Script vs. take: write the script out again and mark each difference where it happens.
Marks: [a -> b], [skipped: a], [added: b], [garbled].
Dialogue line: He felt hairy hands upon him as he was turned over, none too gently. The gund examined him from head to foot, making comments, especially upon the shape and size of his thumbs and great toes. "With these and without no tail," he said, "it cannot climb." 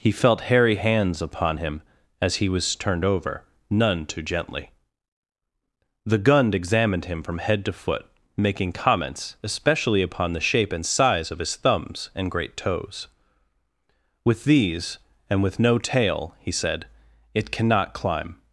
He felt hairy hands upon him as he was turned over, none too gently. The gund examined him from head to foot, making comments, especially upon the shape and size of his thumbs and great toes. "With these and [without -> with] no tail," he said, "it cannot climb."